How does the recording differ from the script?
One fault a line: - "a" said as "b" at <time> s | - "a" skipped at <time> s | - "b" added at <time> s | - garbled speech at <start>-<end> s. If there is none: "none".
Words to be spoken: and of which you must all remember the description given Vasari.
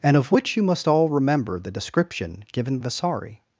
none